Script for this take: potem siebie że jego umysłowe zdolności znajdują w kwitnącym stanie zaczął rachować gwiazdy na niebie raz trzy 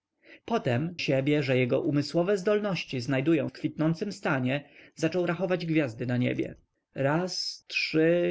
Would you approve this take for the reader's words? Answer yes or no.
yes